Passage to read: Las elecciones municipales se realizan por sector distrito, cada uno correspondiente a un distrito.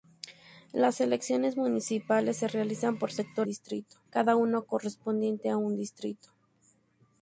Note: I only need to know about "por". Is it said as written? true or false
true